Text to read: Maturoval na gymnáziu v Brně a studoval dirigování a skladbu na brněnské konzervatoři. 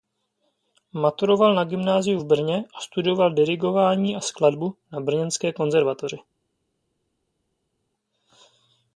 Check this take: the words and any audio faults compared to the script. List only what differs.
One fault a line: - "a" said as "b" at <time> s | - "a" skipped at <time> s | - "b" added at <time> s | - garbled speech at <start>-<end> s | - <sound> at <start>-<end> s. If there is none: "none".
none